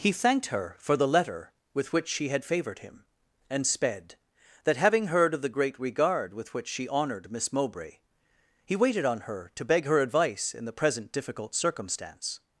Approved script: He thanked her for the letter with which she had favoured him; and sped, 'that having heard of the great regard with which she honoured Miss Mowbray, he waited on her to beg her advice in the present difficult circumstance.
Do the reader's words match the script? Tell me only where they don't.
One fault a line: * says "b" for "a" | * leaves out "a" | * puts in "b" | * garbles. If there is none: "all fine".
all fine